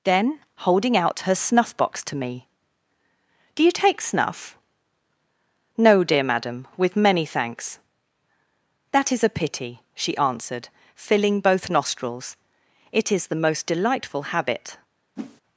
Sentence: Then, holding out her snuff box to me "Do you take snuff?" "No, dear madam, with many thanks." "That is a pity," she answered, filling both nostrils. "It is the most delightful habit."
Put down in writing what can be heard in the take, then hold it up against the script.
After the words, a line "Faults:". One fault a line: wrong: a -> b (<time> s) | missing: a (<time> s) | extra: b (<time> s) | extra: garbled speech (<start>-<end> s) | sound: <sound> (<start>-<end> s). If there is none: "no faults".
Then, holding out her snuff box to me "Do you take snuff?" "No, dear madam, with many thanks." "That is a pity," she answered, filling both nostrils. "It is the most delightful habit."
Faults:
sound: whoosh (15.2-15.4 s)